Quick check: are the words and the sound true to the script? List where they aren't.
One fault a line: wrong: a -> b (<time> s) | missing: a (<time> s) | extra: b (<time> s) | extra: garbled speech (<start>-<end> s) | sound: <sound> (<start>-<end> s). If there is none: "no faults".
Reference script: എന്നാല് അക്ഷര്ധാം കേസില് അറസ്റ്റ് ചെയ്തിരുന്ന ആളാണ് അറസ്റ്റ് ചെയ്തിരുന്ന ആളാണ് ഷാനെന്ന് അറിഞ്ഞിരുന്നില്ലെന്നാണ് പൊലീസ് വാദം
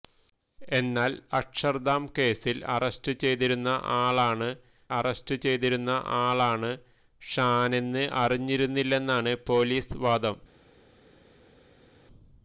no faults